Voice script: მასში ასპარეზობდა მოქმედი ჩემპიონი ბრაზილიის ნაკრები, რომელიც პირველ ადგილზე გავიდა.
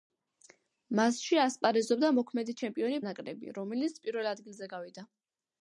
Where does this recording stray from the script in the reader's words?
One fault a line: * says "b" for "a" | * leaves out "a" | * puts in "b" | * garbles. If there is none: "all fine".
* leaves out "ბრაზილიის"